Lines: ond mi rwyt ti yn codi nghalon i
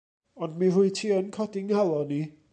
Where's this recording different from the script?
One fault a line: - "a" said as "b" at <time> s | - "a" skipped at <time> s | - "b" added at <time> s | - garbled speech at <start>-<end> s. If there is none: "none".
none